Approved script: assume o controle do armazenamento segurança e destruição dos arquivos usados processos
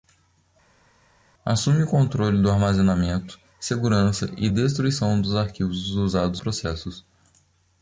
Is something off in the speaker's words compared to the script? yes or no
no